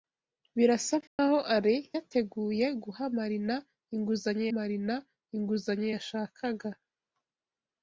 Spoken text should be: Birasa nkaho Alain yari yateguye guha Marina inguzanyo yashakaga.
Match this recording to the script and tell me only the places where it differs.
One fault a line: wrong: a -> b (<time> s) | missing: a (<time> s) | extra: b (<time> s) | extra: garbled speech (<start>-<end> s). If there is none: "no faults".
missing: yari (1.8 s)
extra: Marina inguzanyo (4.6 s)